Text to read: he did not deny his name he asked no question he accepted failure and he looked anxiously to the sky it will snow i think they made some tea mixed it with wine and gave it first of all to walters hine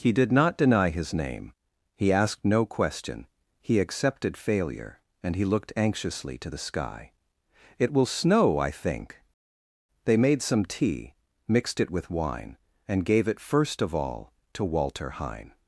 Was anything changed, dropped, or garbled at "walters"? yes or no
yes